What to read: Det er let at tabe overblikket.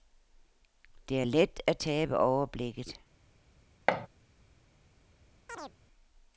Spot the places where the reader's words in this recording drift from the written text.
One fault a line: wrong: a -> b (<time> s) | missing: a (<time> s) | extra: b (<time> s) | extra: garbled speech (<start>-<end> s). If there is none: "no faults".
no faults